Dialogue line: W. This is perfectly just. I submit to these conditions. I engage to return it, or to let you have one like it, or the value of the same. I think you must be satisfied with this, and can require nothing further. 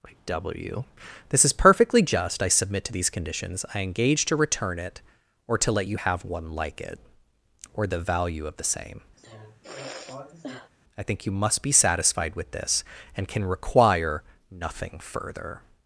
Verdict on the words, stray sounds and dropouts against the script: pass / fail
fail